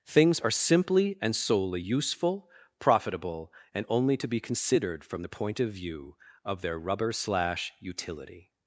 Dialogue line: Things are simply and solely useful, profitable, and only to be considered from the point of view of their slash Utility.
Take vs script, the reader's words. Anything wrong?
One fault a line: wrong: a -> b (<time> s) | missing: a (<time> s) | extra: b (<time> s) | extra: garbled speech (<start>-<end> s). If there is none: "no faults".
extra: rubber (6.8 s)